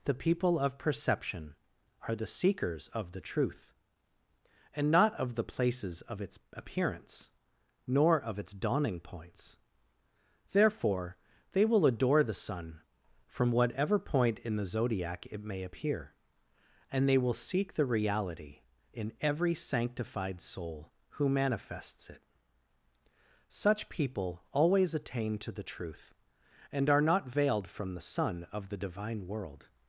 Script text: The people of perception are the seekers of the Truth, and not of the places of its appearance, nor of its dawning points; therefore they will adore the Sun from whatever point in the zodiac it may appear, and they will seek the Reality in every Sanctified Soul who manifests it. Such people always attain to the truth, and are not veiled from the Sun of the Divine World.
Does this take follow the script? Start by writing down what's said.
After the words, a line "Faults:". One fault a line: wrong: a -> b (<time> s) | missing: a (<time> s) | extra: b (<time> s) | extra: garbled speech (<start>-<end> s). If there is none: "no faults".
The people of perception are the seekers of the Truth, and not of the places of its appearance, nor of its dawning points; therefore they will adore the Sun from whatever point in the zodiac it may appear, and they will seek the Reality in every Sanctified Soul who manifests it. Such people always attain to the truth, and are not veiled from the Sun of the Divine World.
Faults:
no faults